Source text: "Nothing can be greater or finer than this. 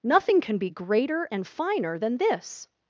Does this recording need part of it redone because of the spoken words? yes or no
yes